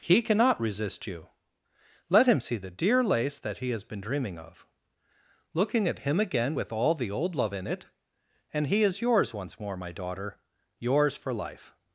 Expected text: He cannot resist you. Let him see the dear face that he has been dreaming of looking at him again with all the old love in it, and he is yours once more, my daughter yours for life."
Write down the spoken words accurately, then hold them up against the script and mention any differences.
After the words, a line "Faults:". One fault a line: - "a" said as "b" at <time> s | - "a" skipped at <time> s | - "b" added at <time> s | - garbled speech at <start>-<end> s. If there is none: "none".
He cannot resist you. Let him see the dear lace that he has been dreaming of looking at him again with all the old love in it, and he is yours once more, my daughter yours for life."
Faults:
- "face" said as "lace" at 3.0 s